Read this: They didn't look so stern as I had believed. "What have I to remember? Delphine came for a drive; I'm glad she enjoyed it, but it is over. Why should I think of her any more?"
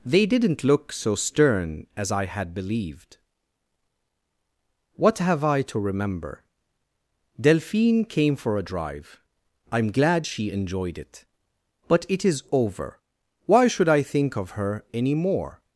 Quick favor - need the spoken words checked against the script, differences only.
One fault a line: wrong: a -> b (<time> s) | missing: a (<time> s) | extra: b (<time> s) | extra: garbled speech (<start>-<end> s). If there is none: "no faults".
no faults